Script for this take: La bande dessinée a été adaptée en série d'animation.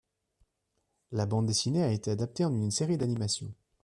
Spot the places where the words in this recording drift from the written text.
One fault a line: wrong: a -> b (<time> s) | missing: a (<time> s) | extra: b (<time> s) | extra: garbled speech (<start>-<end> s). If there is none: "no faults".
extra: une (2.5 s)